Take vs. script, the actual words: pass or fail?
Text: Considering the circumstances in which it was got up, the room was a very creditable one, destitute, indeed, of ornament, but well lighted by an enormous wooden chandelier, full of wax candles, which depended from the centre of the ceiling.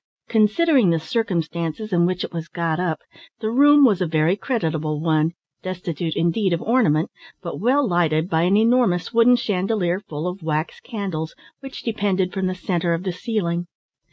pass